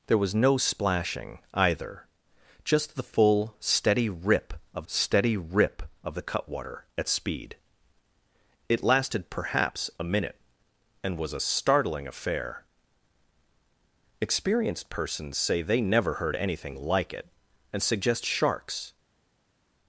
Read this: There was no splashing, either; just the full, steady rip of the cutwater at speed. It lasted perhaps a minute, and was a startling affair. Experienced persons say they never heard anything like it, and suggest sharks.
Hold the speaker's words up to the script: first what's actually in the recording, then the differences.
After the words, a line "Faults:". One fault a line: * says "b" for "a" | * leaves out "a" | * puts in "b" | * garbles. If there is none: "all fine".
There was no splashing, either; just the full, steady rip of steady rip of the cutwater at speed. It lasted perhaps a minute, and was a startling affair. Experienced persons say they never heard anything like it, and suggest sharks.
Faults:
* puts in "steady rip of"